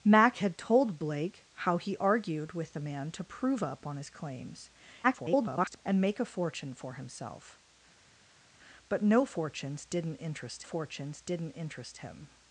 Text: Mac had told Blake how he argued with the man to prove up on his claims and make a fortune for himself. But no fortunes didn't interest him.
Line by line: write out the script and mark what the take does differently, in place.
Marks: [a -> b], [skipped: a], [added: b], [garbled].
Mac had told Blake how he argued with the man to prove up on his claims [garbled] and make a fortune for himself. But no fortunes didn't interest [added: fortunes didn't interest] him.